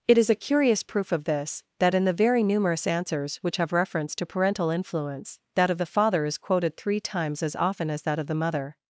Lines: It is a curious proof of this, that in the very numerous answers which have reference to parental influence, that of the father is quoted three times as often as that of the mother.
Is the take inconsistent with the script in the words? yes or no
no